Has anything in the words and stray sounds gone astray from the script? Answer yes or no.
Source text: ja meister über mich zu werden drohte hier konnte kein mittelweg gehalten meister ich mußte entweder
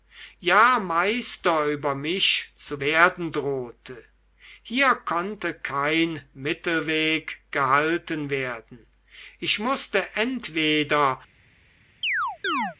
yes